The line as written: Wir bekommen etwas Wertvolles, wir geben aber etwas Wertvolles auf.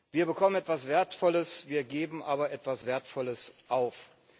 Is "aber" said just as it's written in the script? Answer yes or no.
yes